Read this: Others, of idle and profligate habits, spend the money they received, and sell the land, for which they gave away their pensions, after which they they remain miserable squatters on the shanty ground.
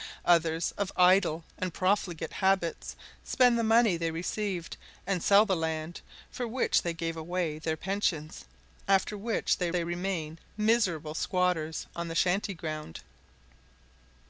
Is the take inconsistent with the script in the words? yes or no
no